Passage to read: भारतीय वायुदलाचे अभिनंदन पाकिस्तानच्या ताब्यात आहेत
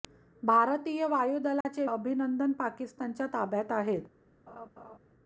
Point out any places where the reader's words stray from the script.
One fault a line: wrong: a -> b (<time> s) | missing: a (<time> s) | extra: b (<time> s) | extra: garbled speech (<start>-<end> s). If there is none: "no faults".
no faults